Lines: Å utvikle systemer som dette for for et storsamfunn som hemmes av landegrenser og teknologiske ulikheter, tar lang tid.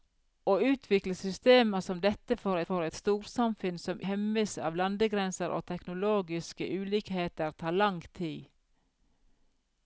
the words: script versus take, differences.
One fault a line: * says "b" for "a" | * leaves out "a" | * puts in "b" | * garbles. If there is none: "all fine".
all fine